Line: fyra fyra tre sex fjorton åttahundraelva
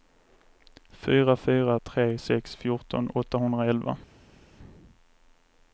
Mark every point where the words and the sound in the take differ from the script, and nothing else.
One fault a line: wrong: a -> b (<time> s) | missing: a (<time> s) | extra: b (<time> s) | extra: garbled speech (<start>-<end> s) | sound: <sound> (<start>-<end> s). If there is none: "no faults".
no faults